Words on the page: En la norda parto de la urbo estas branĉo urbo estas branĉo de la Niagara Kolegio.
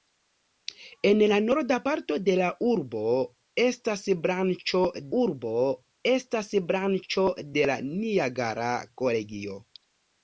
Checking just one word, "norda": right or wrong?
right